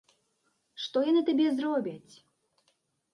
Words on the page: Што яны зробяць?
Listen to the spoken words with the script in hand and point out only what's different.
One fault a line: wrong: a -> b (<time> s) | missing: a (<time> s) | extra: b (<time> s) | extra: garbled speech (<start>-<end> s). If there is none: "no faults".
extra: табе (1.3 s)